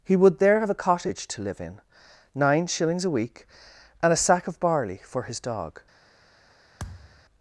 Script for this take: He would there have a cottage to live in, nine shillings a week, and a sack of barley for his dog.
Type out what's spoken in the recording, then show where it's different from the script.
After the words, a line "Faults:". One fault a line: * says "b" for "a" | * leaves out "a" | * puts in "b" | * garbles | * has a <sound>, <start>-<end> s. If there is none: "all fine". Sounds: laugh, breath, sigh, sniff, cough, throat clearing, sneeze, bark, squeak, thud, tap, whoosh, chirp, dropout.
He would there have a cottage to live in, nine shillings a week, and a sack of barley for his dog.
Faults:
* has a thud, 6.8-7.3 s